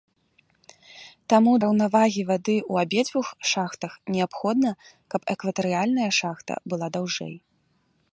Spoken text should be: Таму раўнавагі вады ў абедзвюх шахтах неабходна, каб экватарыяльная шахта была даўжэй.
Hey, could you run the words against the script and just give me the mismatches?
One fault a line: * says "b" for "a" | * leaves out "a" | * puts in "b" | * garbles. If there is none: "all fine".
all fine